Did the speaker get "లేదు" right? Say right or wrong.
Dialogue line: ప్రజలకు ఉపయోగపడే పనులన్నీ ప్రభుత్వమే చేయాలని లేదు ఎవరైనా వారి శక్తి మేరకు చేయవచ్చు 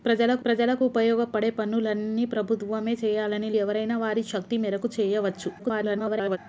wrong